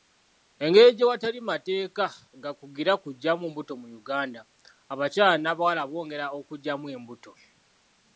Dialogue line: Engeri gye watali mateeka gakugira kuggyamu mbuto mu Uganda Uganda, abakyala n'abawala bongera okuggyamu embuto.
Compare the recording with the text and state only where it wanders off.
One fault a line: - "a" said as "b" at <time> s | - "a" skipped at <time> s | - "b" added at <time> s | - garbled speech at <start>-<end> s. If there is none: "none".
- "Uganda" skipped at 4.4 s